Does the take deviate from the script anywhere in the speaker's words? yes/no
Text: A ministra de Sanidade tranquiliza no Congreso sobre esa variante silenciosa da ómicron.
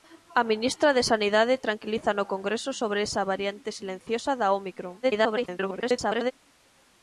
yes